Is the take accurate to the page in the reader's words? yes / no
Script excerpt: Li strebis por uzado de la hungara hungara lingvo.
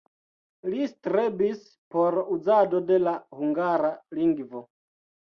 no